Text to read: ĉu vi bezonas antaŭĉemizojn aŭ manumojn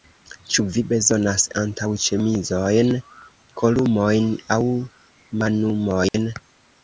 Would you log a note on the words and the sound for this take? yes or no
yes